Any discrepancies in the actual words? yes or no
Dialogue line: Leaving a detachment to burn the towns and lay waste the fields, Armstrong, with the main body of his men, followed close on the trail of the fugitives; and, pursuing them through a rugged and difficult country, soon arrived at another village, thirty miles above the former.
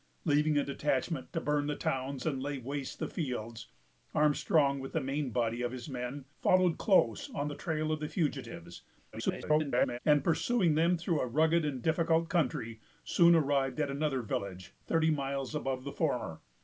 yes